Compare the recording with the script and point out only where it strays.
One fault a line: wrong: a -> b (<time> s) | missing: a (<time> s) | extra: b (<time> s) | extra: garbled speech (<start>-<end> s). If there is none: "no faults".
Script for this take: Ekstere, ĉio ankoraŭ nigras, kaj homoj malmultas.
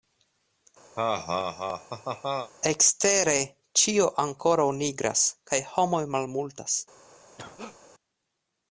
no faults